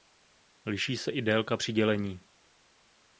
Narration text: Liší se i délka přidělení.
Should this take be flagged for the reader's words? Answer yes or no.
no